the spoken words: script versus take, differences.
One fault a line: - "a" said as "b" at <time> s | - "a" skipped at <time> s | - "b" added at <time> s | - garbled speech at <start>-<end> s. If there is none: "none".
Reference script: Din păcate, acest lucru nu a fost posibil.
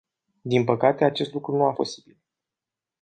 - "fost" skipped at 1.7 s